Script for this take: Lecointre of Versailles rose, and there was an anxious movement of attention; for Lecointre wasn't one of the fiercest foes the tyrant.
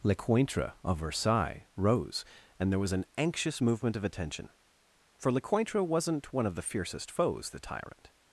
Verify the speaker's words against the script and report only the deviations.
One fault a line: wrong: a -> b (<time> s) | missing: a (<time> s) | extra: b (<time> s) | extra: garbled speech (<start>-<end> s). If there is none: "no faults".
no faults